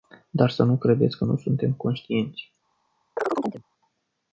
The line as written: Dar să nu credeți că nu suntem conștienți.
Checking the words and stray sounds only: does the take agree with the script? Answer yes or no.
no